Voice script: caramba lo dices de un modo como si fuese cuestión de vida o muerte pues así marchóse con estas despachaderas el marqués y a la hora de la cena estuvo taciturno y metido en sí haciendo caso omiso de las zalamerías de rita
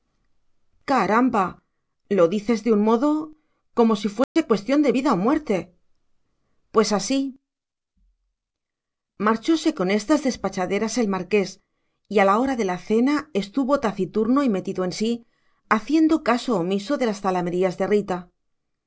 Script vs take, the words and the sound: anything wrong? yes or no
yes